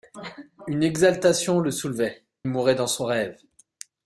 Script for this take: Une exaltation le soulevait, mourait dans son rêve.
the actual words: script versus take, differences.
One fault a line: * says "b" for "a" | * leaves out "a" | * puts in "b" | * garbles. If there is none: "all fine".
all fine